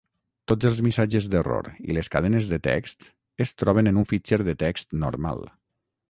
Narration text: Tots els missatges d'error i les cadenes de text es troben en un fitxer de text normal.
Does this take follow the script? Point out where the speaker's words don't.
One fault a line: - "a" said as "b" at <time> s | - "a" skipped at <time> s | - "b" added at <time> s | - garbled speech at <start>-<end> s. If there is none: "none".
none